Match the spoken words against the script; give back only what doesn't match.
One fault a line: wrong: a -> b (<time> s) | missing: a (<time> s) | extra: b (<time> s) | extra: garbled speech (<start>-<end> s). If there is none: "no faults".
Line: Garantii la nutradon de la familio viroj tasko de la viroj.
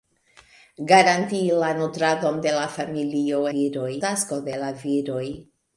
no faults